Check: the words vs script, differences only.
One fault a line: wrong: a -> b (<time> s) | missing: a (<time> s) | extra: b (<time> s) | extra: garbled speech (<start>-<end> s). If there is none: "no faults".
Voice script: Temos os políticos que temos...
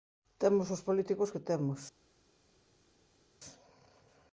no faults